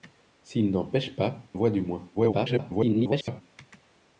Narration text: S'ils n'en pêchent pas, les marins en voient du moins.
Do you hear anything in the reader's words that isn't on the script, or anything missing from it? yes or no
yes